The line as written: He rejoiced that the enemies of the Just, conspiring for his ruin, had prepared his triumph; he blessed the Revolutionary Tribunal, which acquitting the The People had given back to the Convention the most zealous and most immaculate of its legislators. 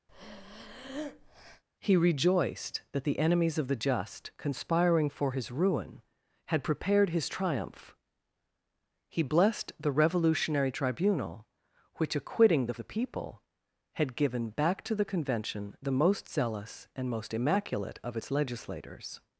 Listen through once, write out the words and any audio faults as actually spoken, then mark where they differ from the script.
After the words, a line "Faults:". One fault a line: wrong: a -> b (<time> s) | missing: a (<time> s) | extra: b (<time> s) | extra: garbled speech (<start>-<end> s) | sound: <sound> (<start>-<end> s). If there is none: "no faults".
He rejoiced that the enemies of the Just, conspiring for his ruin, had prepared his triumph; he blessed the Revolutionary Tribunal, which acquitting the The People had given back to the Convention the most zealous and most immaculate of its legislators.
Faults:
sound: breath (0.1-1.6 s)